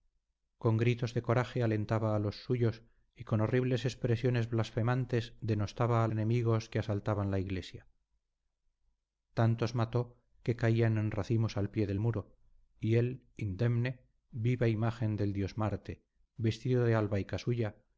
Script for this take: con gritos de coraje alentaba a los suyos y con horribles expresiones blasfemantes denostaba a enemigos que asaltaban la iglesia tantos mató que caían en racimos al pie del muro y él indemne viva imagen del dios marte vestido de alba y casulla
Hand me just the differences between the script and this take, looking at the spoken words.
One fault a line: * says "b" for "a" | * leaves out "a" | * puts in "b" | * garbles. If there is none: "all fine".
all fine